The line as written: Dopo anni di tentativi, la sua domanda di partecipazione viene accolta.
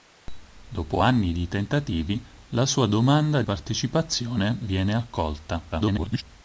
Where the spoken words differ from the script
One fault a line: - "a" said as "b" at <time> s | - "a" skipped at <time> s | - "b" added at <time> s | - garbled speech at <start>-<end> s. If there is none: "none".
- "di" skipped at 3.4 s
- garbled speech at 5.7-6.2 s